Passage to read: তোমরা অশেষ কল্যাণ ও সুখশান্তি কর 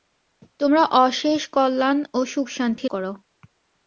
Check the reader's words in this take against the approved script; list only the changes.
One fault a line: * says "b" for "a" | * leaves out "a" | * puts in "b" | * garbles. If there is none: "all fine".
all fine